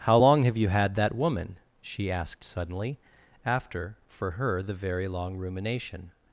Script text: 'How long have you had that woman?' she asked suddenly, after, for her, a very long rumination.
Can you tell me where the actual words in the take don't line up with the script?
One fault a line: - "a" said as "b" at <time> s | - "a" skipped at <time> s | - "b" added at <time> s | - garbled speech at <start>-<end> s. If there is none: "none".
- "a" said as "the" at 4.6 s